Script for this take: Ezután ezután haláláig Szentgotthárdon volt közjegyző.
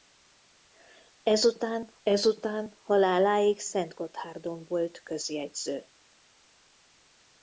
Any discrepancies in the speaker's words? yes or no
no